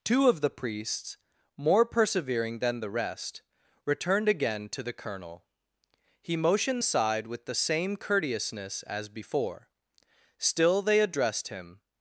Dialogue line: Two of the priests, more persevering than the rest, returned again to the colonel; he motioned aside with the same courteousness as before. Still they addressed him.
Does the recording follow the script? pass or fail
pass